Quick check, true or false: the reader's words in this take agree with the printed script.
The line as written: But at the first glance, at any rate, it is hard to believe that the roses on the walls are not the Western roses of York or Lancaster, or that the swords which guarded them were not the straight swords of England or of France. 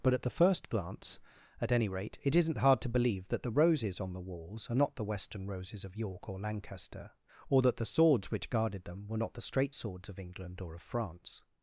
false